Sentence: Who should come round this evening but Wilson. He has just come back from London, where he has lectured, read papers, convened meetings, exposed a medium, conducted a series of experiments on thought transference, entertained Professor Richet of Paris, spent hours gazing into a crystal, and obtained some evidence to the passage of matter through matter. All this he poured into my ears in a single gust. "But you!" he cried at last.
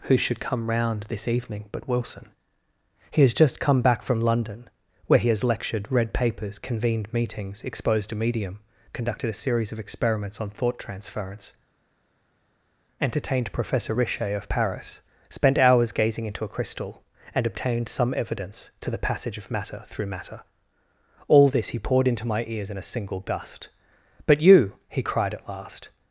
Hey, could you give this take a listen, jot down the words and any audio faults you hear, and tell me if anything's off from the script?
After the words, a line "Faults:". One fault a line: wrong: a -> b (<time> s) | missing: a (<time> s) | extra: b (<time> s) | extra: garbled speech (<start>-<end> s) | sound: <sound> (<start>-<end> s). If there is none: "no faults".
Who should come round this evening but Wilson. He has just come back from London, where he has lectured, read papers, convened meetings, exposed a medium, conducted a series of experiments on thought transference, entertained Professor Richet of Paris, spent hours gazing into a crystal, and obtained some evidence to the passage of matter through matter. All this he poured into my ears in a single gust. "But you!" he cried at last.
Faults:
no faults